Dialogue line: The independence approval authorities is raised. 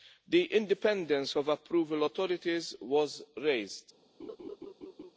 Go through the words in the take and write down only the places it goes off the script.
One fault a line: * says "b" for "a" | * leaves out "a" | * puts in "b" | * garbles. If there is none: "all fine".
* puts in "of"
* says "was" for "is"